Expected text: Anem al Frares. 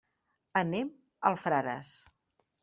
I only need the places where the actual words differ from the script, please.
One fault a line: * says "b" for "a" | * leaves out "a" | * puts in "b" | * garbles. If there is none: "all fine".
all fine